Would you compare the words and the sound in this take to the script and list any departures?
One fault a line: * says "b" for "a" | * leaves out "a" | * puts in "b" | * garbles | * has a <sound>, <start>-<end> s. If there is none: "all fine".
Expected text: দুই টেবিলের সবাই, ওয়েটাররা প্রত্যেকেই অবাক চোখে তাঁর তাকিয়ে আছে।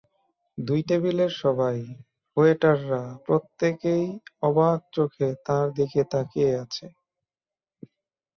* puts in "দিকে"